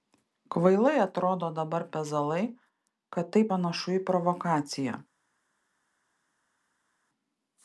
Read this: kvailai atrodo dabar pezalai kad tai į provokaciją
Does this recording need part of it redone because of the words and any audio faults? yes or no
yes